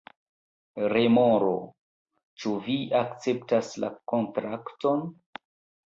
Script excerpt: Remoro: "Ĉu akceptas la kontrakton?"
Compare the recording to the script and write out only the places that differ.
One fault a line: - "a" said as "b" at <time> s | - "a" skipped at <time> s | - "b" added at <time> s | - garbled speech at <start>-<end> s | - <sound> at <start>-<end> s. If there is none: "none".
- "vi" added at 2.6 s